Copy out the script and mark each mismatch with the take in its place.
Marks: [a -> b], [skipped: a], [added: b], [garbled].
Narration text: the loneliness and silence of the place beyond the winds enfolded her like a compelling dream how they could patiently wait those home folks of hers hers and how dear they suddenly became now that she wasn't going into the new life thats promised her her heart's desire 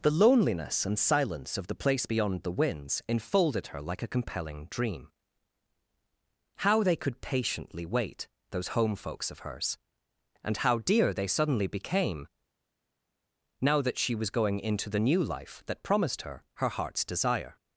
the loneliness and silence of the place beyond the winds enfolded her like a compelling dream how they could patiently wait those home folks of hers [skipped: hers] and how dear they suddenly became now that she [wasn't -> was] going into the new life [thats -> that] promised her her heart's desire